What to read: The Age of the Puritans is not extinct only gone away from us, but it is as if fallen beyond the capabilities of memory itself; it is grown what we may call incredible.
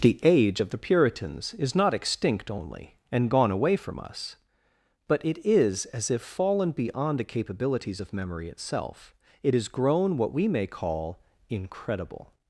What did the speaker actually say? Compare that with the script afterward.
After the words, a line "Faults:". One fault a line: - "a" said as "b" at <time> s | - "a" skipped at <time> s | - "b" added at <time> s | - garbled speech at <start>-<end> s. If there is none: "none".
The Age of the Puritans is not extinct only and gone away from us, but it is as if fallen beyond the capabilities of memory itself; it is grown what we may call incredible.
Faults:
- "and" added at 3.1 s